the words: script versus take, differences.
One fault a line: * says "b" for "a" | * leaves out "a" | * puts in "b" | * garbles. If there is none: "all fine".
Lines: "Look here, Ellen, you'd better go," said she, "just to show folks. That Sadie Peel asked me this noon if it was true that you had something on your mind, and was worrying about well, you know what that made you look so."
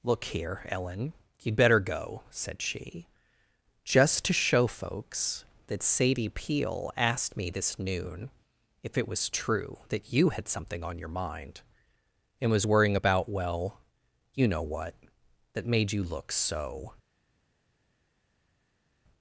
all fine